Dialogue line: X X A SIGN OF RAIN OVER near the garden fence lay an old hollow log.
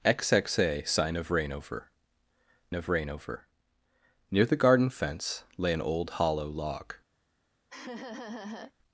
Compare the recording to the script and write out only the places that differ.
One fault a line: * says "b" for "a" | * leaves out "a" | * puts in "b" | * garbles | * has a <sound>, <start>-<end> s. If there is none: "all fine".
* puts in "OF RAIN OVER"
* has a laugh, 7.7-8.7 s